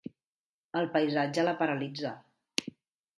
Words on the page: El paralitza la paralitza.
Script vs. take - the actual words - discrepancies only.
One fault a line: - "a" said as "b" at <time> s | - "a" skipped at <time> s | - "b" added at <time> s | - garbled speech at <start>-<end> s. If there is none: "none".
- "paralitza" said as "paisatge" at 0.9 s